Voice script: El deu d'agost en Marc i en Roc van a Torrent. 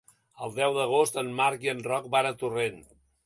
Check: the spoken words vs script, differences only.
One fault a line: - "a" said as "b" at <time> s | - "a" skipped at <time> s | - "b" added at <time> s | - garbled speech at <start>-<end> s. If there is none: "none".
none